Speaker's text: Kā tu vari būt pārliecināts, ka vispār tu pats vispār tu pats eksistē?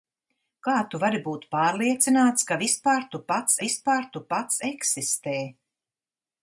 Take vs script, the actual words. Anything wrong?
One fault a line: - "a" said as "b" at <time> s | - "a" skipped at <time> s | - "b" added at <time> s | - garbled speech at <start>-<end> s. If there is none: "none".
none